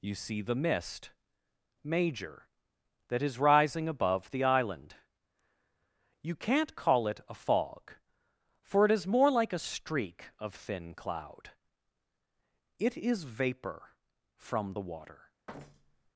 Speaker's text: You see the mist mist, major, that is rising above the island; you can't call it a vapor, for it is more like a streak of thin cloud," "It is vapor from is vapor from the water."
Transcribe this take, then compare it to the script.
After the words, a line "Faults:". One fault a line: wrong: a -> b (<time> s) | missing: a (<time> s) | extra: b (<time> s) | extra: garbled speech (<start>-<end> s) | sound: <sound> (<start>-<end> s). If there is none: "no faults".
You see the mist, major, that is rising above the island; you can't call it a fog, for it is more like a streak of thin cloud," "It is vapor from the water."
Faults:
missing: mist (1.1 s)
wrong: vapor -> fog (7.3 s)
missing: is vapor from (14.7 s)
sound: thud (15.5-16.1 s)